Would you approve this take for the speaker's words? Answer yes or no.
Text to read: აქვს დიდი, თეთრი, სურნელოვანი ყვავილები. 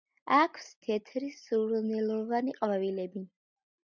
no